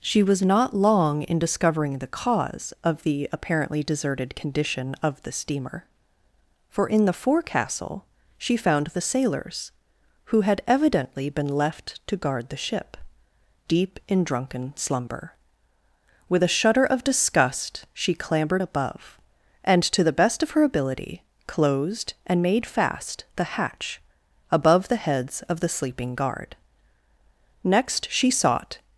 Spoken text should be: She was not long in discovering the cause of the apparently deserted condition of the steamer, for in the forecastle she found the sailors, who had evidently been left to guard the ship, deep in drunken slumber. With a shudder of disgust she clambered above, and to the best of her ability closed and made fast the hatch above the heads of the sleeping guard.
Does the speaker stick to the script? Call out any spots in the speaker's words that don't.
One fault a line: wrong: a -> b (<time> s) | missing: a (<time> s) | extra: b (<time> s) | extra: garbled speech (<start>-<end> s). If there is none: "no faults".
extra: Next she sought (27.6 s)